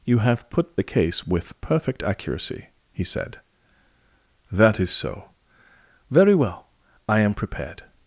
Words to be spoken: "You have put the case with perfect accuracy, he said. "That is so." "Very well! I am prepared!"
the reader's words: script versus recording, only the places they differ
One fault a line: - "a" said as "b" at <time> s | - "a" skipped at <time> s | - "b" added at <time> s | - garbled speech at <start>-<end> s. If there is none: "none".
none